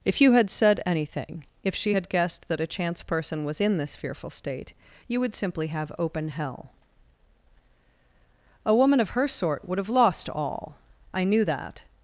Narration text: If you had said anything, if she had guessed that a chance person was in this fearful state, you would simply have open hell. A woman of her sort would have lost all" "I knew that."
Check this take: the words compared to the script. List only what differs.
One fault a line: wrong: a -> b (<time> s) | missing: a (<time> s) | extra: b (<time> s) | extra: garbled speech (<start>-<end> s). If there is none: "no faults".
no faults